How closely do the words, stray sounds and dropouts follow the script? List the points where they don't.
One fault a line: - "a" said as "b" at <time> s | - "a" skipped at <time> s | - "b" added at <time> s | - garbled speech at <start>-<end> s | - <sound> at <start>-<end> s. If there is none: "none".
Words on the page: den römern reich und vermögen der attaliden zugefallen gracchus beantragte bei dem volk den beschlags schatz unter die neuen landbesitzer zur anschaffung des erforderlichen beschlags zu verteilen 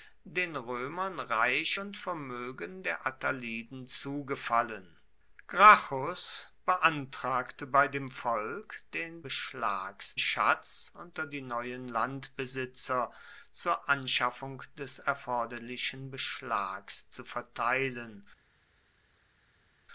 none